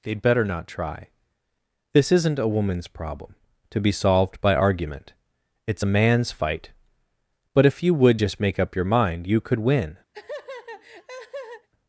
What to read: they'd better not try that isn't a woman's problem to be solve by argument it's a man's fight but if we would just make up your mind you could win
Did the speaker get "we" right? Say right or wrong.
wrong